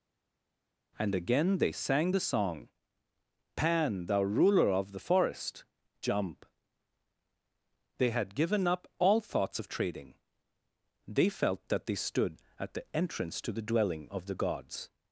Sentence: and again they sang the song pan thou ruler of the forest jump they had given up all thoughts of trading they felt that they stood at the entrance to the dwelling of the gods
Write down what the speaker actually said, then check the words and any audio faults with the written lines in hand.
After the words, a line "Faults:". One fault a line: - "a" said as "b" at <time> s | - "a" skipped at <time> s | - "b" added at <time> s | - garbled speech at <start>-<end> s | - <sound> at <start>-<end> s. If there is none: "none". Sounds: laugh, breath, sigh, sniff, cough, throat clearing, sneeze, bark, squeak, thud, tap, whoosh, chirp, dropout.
and again they sang the song pan thou ruler of the forest jump they had given up all thoughts of trading they felt that they stood at the entrance to the dwelling of the gods
Faults:
none